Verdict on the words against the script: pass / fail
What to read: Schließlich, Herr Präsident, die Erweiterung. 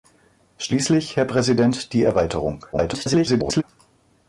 fail